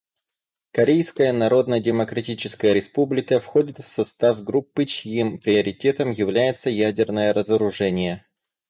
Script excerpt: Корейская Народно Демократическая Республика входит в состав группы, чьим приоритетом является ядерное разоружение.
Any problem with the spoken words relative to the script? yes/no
no